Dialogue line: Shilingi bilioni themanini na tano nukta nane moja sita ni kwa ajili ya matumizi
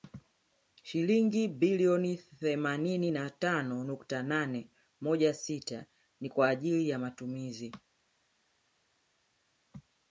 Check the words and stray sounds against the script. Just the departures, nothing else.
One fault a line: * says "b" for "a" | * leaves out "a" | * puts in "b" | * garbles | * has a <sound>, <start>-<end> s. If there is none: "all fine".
all fine